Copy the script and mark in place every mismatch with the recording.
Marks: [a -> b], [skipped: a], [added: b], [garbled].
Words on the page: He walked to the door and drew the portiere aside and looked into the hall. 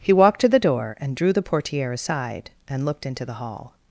He walked to the door and drew the portiere aside and looked into the hall.